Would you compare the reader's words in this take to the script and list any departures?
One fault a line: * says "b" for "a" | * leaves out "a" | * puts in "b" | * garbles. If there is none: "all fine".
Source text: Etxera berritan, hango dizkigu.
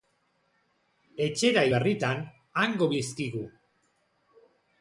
all fine